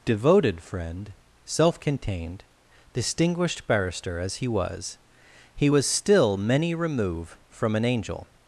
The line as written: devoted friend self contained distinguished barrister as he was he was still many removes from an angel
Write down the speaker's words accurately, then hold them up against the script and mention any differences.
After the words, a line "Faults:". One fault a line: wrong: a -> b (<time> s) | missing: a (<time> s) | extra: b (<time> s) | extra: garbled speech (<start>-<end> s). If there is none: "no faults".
devoted friend self contained distinguished barrister as he was he was still many remove from an angel
Faults:
wrong: removes -> remove (6.7 s)